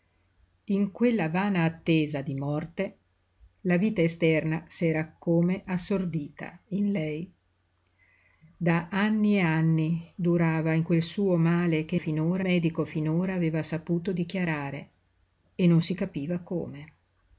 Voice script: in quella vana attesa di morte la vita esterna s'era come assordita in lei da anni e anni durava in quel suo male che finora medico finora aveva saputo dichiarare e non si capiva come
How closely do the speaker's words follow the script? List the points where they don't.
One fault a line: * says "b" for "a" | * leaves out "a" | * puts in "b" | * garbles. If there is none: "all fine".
all fine